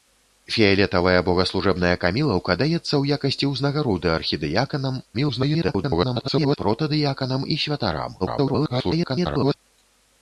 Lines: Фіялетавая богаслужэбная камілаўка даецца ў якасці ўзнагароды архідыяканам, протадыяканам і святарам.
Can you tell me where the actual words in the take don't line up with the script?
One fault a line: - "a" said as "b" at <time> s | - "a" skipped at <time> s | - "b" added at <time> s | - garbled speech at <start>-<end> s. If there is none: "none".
- garbled speech at 5.1-6.6 s
- garbled speech at 8.2-9.5 s